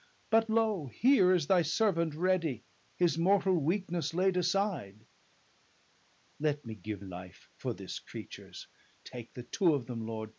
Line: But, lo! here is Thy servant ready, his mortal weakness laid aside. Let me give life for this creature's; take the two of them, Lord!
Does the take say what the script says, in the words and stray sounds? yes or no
yes